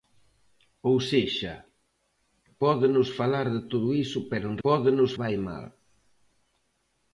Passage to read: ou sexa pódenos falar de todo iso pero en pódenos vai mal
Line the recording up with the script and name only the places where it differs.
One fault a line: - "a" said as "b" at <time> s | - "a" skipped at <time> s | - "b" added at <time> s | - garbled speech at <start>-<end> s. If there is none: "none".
none